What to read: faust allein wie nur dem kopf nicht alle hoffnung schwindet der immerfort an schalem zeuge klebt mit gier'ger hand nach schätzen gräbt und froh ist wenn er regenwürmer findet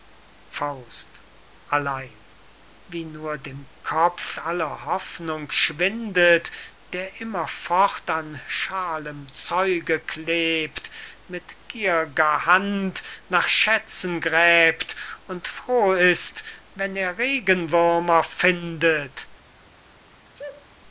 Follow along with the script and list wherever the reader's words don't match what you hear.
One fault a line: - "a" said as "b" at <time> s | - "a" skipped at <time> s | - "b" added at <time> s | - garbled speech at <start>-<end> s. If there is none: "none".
- "nicht" skipped at 4.4 s